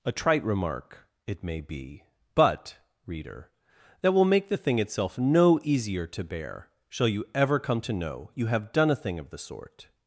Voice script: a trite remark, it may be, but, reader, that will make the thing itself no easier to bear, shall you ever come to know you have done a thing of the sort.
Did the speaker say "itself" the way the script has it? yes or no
yes